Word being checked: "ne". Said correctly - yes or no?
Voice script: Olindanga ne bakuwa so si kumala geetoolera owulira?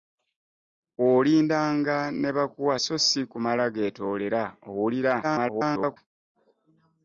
yes